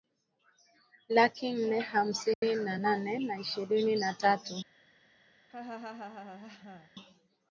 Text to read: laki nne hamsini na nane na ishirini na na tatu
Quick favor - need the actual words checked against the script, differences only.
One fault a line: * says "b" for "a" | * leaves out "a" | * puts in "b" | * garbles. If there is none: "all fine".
* leaves out "na"